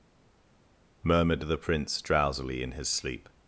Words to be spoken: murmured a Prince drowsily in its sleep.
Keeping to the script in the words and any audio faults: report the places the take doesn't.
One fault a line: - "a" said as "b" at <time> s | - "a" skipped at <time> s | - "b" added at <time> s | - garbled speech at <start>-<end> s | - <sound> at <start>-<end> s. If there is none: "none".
- "a" said as "the" at 1.5 s
- "its" said as "his" at 2.7 s